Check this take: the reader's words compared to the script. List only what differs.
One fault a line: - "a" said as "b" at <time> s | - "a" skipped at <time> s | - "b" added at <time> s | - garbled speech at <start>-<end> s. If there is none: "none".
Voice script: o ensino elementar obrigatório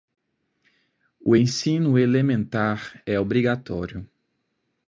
- "é" added at 3.0 s